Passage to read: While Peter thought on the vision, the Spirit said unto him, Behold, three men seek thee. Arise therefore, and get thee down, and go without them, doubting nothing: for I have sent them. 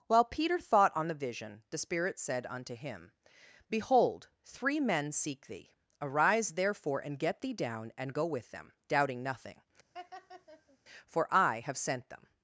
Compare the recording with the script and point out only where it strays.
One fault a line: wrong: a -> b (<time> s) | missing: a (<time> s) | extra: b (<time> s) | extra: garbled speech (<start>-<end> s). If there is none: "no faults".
wrong: without -> with (8.2 s)